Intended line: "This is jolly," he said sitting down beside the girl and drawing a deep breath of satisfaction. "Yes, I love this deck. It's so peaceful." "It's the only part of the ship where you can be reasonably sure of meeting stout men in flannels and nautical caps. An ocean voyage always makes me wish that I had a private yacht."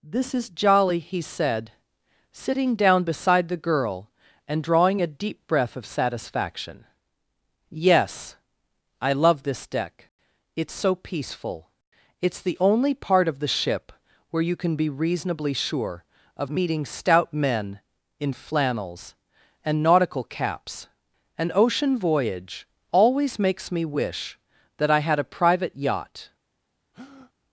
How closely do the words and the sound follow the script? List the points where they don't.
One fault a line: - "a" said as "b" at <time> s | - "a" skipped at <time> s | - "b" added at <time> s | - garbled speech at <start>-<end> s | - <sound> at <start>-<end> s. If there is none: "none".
- breath at 26.9-27.3 s